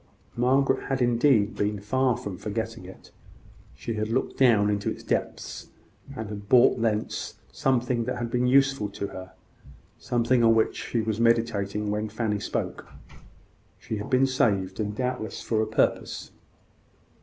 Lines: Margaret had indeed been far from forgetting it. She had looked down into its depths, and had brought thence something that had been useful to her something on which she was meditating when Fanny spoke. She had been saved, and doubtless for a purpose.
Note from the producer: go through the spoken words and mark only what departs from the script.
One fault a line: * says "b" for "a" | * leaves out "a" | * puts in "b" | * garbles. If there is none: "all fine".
all fine